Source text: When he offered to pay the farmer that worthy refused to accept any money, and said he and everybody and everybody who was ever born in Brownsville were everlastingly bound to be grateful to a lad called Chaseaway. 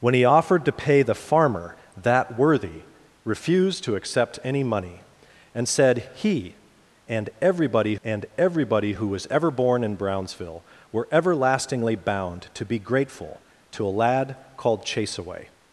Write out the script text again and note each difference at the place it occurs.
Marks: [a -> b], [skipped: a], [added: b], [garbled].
When he offered to pay the farmer that worthy refused to accept any money, and said he and everybody and everybody who was ever born in Brownsville were everlastingly bound to be grateful to a lad called Chaseaway.